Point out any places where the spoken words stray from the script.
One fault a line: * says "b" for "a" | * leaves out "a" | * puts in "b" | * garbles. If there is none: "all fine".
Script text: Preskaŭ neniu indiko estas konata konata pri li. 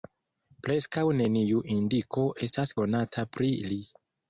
* leaves out "konata"